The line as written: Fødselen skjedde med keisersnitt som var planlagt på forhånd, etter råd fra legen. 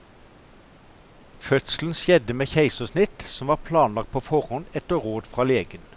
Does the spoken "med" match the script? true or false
true